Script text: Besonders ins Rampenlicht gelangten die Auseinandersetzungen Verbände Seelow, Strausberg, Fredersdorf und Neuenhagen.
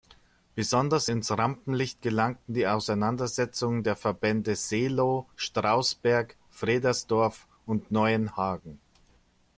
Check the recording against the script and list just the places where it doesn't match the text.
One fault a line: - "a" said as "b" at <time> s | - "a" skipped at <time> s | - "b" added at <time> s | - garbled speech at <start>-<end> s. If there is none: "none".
- "der" added at 3.8 s